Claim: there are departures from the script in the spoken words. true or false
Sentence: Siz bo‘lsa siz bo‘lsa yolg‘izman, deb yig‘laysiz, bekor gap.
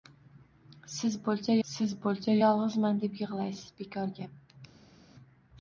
false